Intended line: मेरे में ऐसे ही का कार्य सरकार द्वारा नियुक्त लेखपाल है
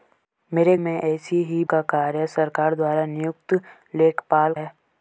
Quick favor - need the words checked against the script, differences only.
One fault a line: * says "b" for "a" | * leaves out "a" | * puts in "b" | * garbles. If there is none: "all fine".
all fine